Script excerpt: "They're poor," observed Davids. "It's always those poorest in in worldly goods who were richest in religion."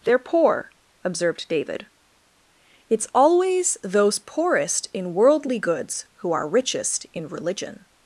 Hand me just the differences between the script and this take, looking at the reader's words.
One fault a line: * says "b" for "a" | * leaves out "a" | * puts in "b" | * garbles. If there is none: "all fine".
* says "David" for "Davids"
* leaves out "in"
* says "are" for "were"